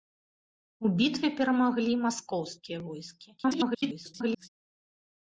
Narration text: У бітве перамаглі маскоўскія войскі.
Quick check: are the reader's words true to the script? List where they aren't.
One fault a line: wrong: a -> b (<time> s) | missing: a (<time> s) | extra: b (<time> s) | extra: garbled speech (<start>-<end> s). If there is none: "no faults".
extra: garbled speech (3.4-4.5 s)